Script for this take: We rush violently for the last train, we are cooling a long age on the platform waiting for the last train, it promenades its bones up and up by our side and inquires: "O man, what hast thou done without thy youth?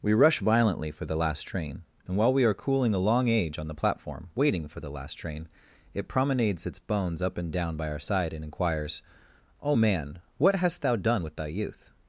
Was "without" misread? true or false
true